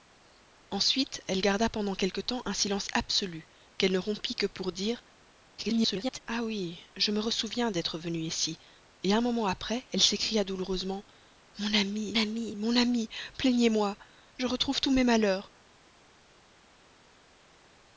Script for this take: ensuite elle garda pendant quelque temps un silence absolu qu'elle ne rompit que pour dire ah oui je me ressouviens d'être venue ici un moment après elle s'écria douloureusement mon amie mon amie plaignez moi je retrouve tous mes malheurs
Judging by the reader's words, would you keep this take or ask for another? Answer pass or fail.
fail